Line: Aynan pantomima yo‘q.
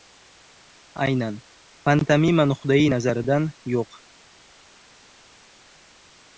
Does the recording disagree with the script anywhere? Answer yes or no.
yes